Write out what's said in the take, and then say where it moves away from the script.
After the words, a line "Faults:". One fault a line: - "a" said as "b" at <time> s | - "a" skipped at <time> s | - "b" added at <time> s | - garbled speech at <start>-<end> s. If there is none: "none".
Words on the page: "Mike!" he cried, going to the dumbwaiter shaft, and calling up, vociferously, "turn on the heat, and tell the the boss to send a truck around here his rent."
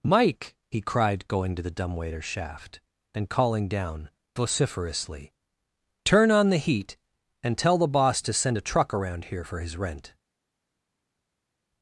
"Mike!" he cried, going to the dumbwaiter shaft, and calling down, vociferously, "turn on the heat, and tell the boss to send a truck around here for his rent."
Faults:
- "up" said as "down" at 3.7 s
- "the" skipped at 7.9 s
- "for" added at 9.4 s